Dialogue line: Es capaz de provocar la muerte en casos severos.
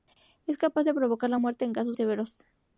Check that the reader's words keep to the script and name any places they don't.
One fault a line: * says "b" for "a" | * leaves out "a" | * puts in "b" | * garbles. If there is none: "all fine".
all fine